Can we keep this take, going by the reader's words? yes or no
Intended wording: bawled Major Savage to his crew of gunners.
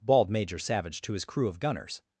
yes